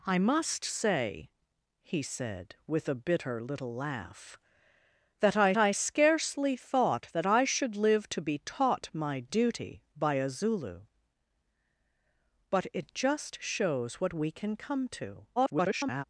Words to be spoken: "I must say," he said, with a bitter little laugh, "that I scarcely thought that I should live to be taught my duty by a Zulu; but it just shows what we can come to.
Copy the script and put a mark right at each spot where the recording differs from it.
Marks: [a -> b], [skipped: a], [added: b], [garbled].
"I must say," he said, with a bitter little laugh, "that I [added: I] scarcely thought that I should live to be taught my duty by a Zulu; but it just shows what we can come to. [garbled]